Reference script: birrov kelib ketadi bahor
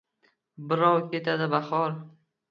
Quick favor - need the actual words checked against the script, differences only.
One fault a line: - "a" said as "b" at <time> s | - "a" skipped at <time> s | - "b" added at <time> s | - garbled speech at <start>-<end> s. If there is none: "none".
- "kelib" skipped at 1.0 s